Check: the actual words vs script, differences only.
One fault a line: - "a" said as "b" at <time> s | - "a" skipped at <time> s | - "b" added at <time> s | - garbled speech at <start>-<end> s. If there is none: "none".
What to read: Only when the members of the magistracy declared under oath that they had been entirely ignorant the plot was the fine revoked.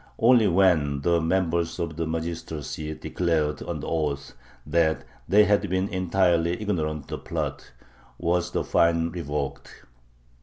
none